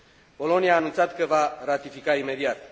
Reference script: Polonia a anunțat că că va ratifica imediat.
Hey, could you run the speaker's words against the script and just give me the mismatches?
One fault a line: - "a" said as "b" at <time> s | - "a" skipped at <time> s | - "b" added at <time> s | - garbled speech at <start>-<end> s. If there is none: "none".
- "că" skipped at 1.2 s